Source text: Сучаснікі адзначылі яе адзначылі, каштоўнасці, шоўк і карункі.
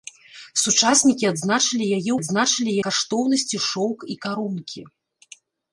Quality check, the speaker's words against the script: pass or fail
pass